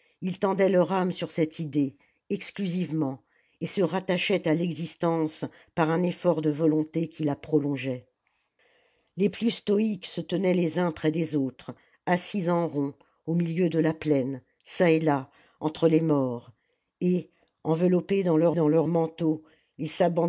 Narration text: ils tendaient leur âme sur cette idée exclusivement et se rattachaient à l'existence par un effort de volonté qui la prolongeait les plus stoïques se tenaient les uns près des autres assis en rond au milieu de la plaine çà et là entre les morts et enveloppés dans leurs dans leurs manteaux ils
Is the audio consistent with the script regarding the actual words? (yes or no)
yes